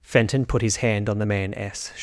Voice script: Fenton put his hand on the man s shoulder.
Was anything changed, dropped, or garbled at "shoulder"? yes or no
yes